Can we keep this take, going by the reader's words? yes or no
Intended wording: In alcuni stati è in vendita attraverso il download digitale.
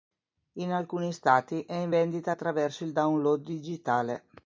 yes